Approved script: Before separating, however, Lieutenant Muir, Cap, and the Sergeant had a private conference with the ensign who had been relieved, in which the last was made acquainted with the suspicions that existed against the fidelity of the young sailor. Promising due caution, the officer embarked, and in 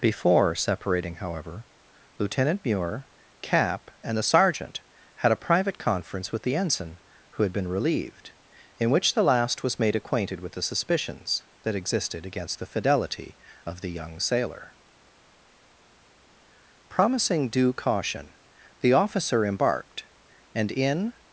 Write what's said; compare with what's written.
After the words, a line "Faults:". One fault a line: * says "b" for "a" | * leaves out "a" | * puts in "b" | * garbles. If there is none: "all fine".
Before separating, however, Lieutenant Muir, Cap, and the Sergeant had a private conference with the ensign who had been relieved, in which the last was made acquainted with the suspicions that existed against the fidelity of the young sailor. Promising due caution, the officer embarked, and in
Faults:
all fine